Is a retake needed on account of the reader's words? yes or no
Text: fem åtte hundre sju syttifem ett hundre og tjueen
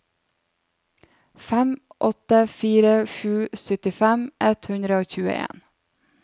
yes